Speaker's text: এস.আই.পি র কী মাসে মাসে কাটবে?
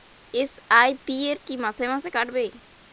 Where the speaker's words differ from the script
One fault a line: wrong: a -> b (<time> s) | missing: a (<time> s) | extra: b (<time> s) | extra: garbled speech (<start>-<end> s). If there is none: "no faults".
no faults